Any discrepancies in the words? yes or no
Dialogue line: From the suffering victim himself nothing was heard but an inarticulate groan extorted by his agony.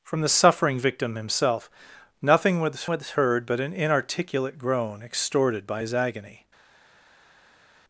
yes